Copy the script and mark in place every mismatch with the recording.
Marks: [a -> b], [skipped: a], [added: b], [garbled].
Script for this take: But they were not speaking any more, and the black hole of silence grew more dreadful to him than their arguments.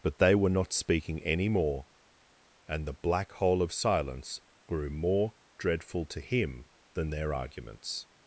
But they were not speaking any more, and the black hole of silence grew more dreadful to him than their arguments.